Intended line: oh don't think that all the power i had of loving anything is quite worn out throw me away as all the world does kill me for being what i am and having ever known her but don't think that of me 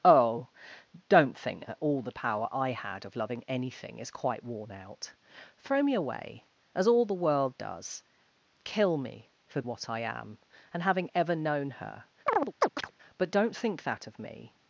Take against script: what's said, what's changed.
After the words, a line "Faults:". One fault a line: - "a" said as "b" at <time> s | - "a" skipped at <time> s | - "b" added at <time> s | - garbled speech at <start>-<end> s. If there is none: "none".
oh don't think that all the power i had of loving anything is quite worn out throw me away as all the world does kill me for what i am and having ever known her but don't think that of me
Faults:
- "being" skipped at 9.6 s